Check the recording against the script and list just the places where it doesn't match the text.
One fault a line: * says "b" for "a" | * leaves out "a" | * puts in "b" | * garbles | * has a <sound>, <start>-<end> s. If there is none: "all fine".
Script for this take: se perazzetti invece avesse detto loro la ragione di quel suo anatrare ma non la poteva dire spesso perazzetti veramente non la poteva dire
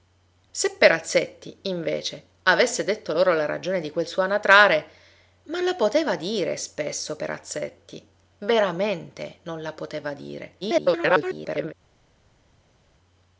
* leaves out "non"
* garbles